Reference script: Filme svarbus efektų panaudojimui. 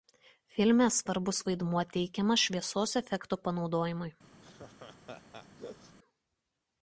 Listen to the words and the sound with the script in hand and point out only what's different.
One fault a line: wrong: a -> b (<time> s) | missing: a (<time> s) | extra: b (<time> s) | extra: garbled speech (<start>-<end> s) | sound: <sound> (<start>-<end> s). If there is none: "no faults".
extra: vaidmuo teikiamas šviesos (1.5 s)
sound: laugh (4.4-6.0 s)